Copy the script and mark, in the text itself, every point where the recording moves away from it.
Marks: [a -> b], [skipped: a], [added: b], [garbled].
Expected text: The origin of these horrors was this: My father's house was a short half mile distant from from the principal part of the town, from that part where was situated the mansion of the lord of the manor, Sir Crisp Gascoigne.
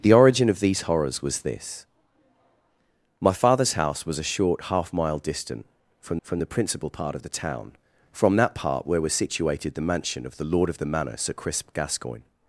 The origin of these horrors was this: My father's house was a short half mile distant from from the principal part of the town, from that part where was situated the mansion of the lord of the manor, Sir Crisp Gascoigne.